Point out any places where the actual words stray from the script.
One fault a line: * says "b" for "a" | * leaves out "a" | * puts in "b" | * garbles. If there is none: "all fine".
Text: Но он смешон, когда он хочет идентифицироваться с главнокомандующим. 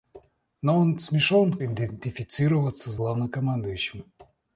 * leaves out "когда он хочет"